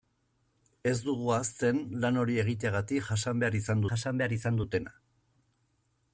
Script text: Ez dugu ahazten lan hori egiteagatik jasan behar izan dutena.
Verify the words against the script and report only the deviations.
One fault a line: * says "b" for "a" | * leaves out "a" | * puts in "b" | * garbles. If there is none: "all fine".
* puts in "jasan behar izan"